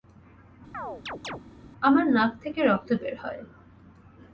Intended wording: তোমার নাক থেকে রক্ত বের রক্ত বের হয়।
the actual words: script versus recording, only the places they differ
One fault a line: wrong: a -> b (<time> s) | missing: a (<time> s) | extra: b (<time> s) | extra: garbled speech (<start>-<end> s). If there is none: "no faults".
wrong: তোমার -> আমার (1.8 s)
missing: রক্ত বের (3.2 s)